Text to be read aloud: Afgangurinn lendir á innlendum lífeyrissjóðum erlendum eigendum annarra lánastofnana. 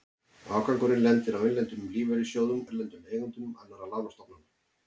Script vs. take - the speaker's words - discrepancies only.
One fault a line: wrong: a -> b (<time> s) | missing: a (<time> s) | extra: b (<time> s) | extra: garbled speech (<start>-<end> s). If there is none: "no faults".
no faults